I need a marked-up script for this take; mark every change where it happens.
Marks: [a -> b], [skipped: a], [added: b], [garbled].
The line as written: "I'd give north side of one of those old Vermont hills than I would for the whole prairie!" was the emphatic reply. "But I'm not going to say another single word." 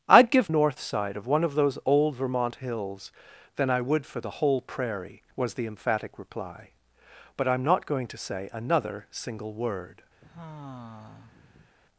"I'd give north side of one of those old Vermont hills than I would for the whole prairie!" was the emphatic reply. "But I'm not going to say another single word."